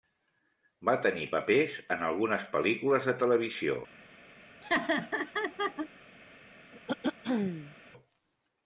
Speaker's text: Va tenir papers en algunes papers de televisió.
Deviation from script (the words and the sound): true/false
true